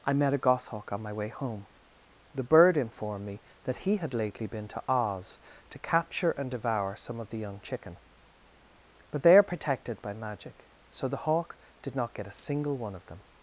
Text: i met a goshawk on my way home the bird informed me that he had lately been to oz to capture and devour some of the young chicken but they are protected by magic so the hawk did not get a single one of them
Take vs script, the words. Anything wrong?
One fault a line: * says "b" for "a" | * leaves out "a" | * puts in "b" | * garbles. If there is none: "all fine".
all fine